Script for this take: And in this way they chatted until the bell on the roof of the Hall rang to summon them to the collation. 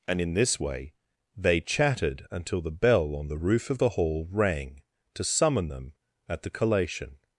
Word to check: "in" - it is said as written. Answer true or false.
true